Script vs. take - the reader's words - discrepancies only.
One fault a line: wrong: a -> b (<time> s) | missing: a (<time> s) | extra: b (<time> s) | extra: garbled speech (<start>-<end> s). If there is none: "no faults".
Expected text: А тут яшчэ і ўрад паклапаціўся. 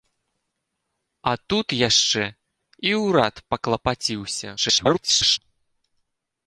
extra: garbled speech (4.6-5.4 s)